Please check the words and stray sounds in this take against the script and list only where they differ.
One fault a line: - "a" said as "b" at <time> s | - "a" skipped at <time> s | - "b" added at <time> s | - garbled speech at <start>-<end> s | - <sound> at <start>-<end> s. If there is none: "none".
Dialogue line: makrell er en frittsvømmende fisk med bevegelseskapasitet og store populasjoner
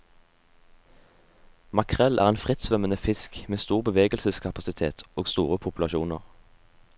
- "stor" added at 3.6 s